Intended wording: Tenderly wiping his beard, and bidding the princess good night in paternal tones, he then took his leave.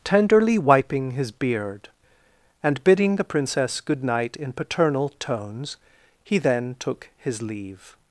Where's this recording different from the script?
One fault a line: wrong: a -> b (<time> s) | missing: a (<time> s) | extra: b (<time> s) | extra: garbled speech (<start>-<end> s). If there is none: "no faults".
no faults